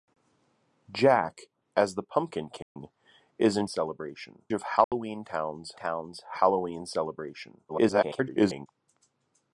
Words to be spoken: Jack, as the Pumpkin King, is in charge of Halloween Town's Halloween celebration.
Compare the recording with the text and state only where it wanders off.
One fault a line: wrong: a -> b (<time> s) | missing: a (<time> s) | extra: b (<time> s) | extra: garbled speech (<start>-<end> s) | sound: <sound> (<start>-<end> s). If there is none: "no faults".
sound: dropout (2.6-2.8 s)
wrong: charge -> celebration (3.7 s)
sound: dropout (4.8-4.9 s)
extra: Town's (5.8 s)
extra: garbled speech (7.7-8.7 s)